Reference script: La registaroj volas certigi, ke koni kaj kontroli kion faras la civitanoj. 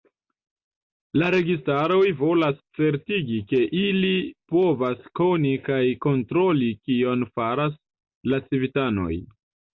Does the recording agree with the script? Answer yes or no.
no